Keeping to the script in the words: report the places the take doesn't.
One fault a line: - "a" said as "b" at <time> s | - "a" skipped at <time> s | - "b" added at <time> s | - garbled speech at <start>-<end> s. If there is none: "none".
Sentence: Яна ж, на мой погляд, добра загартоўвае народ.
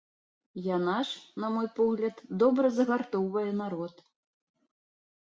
none